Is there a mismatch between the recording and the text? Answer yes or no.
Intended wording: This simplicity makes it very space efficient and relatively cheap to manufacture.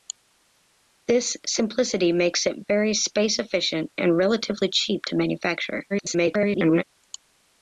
yes